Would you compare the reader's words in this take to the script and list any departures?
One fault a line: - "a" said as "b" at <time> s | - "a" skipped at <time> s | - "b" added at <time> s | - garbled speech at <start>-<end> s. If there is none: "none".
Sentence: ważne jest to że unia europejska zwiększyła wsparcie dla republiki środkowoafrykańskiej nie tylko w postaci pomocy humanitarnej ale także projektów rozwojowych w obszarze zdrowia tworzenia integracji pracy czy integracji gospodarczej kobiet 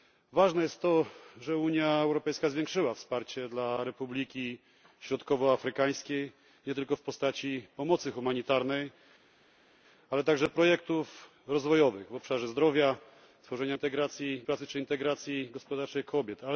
none